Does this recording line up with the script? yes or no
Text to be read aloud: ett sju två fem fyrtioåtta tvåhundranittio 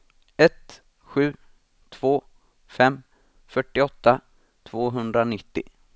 yes